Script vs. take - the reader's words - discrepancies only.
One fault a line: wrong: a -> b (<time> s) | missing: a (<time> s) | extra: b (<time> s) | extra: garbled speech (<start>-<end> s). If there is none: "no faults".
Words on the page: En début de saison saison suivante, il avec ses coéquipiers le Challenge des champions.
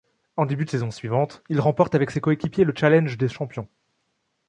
missing: saison (0.9 s)
extra: remporte (1.6 s)